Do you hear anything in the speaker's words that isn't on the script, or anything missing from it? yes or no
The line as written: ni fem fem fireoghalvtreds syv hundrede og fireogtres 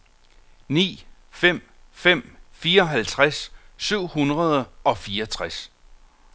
no